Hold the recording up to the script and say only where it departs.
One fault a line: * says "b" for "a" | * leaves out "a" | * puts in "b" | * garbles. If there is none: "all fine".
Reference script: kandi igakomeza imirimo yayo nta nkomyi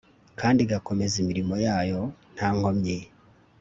all fine